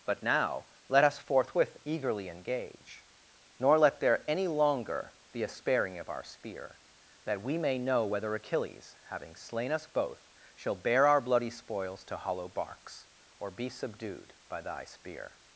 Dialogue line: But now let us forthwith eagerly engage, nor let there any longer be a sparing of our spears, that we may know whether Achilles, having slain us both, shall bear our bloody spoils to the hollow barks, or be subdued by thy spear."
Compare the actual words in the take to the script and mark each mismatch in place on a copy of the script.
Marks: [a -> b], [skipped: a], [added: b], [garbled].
But now let us forthwith eagerly engage, nor let there any longer be a sparing of our [spears, -> spear] that we may know whether Achilles, having slain us both, shall bear our bloody spoils to [skipped: the] hollow barks, or be subdued by thy spear."